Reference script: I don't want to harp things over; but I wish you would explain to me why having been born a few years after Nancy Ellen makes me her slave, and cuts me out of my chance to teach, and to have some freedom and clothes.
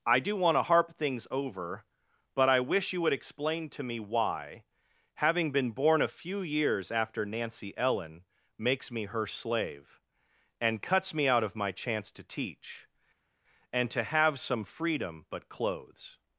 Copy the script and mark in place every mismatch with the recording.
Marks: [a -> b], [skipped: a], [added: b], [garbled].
I [don't -> do] want to harp things over; but I wish you would explain to me why having been born a few years after Nancy Ellen makes me her slave, and cuts me out of my chance to teach, and to have some freedom [and -> but] clothes.